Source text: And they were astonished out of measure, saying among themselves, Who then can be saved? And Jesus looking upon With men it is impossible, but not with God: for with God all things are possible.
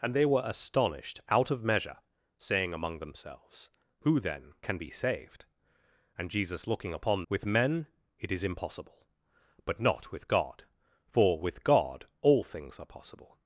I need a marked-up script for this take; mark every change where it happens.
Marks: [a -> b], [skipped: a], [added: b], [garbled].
And they were astonished out of measure, saying among themselves, Who then can be saved? And Jesus looking upon With men it is impossible, but not with God: for with God all things are possible.